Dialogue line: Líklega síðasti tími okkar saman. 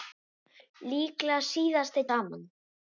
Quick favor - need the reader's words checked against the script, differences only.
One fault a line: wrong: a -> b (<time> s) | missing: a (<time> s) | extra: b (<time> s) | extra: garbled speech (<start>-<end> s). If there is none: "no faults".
missing: tími okkar (2.1 s)